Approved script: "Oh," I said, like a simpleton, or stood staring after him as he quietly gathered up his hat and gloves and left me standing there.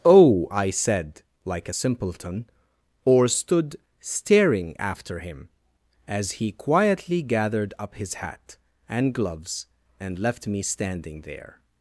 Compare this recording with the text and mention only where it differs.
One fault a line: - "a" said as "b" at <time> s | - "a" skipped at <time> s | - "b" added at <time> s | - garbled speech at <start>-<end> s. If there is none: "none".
none